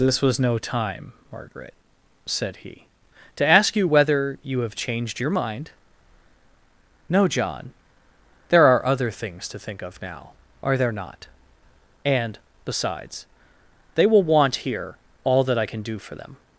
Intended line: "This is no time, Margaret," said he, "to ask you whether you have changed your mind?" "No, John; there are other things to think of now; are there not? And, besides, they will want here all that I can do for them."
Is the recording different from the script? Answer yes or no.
yes